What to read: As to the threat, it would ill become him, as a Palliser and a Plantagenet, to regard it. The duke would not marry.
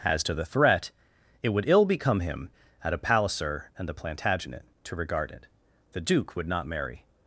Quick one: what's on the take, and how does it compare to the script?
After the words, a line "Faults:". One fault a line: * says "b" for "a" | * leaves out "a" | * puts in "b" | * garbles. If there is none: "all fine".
As to the threat, it would ill become him, at a Palliser and the Plantagenet, to regard it. The duke would not marry.
Faults:
* says "at" for "as"
* says "the" for "a"